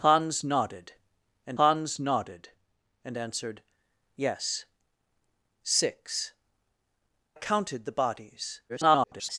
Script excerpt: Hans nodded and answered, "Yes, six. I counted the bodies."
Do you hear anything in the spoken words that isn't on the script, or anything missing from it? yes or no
yes